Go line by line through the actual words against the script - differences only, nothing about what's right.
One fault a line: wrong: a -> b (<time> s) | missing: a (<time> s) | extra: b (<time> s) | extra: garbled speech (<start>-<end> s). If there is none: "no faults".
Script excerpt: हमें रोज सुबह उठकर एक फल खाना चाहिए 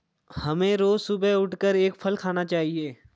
no faults